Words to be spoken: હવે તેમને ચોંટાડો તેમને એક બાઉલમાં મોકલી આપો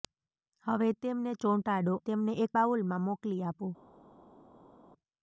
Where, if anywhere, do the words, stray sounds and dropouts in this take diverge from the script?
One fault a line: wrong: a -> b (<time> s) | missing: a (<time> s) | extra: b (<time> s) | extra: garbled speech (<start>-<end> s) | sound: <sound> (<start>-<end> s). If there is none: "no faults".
no faults